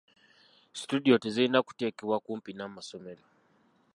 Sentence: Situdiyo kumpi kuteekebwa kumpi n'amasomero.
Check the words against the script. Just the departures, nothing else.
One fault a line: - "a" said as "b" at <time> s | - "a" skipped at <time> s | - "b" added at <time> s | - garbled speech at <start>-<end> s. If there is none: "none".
- "kumpi" said as "tezirina" at 1.2 s